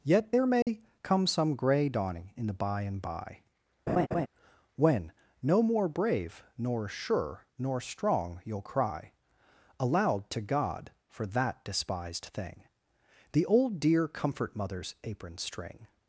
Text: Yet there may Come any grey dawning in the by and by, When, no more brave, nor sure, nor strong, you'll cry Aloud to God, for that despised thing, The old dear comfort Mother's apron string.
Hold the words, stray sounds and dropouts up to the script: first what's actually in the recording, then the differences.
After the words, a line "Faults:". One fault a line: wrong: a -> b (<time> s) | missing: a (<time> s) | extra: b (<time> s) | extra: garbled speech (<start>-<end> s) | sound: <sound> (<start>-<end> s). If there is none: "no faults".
Yet there may Come some grey dawning in the by and by, When, no more brave, nor sure, nor strong, you'll cry Aloud to God, for that despised thing, The old dear comfort Mother's apron string.
Faults:
sound: dropout (0.6-0.7 s)
wrong: any -> some (1.3 s)
sound: laugh (3.9-4.3 s)